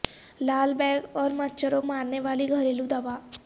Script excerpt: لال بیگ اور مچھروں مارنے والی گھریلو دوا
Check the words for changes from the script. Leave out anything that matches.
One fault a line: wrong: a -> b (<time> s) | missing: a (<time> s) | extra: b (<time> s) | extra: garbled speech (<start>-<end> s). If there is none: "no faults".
no faults